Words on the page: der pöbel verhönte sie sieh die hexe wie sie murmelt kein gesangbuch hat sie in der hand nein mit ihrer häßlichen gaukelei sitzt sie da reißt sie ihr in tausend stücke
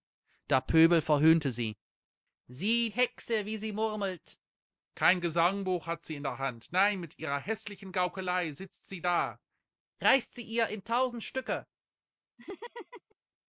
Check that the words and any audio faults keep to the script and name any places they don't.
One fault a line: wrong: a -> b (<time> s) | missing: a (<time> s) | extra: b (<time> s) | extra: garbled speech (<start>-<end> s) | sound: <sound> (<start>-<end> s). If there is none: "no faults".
missing: die (2.9 s)
sound: laugh (12.4-13.2 s)